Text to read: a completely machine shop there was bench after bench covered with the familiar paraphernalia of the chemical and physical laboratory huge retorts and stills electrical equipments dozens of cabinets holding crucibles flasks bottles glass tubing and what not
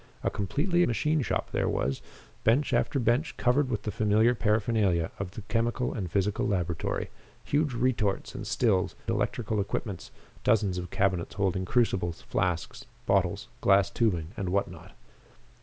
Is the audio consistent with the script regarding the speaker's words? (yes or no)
yes